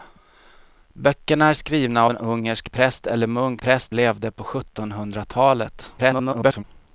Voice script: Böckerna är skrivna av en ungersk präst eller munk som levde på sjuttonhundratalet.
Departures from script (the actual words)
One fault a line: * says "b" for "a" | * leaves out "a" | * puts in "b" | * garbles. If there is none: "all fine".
* leaves out "av"
* says "präst" for "som"
* garbles